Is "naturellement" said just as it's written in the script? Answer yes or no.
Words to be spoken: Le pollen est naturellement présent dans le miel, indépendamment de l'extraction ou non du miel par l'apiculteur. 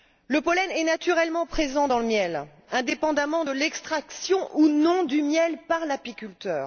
yes